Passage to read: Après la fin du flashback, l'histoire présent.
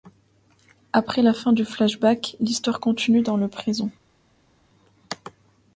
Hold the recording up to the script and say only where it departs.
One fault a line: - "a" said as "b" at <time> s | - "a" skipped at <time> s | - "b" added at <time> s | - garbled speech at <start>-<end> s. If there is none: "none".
- "continue dans le" added at 2.8 s